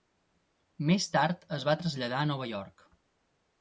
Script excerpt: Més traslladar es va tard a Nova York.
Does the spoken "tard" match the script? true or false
false